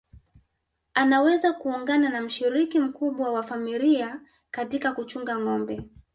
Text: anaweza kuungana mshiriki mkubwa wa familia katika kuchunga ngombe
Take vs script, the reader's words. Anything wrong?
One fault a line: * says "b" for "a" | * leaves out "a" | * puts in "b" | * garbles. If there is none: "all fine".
* puts in "na"